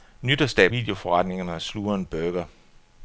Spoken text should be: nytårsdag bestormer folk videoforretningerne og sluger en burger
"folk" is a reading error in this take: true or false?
true